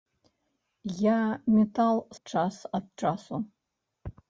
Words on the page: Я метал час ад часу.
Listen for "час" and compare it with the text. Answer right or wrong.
right